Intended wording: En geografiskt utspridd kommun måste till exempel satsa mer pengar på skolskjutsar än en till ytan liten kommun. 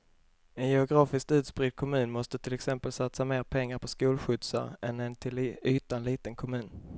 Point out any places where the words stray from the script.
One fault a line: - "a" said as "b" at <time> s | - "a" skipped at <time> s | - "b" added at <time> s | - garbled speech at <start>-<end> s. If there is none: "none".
none